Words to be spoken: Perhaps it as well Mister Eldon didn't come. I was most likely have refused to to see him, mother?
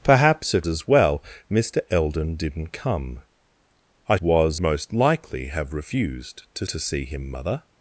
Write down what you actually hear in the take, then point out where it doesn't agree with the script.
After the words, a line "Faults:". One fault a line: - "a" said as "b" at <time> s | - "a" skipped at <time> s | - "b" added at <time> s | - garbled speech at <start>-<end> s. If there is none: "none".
Perhaps it as well Mister Eldon didn't come. I was most likely have refused to to see him, mother?
Faults:
none